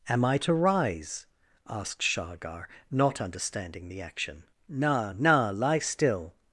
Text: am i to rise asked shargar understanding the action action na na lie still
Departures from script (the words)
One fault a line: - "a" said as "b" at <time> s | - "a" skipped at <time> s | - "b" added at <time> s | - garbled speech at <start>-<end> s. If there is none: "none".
- "not" added at 2.9 s
- "action" skipped at 4.4 s